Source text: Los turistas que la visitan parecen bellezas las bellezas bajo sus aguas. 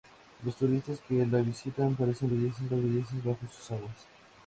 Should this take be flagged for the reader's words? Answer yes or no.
no